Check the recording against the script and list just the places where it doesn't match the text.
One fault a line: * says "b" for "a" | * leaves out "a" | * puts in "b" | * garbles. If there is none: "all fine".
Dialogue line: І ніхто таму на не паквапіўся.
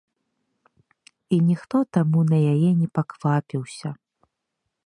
* puts in "яе"